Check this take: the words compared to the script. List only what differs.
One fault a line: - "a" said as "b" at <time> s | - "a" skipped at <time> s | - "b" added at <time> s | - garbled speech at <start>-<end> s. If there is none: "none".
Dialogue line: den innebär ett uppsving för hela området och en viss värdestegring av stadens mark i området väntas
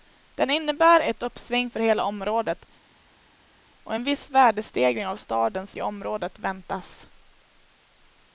- "mark" skipped at 5.8 s